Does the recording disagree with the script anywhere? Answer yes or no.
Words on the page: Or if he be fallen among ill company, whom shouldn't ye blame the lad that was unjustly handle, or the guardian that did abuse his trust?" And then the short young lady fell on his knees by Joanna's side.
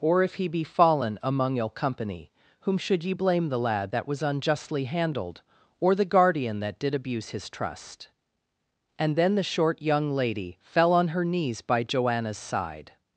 yes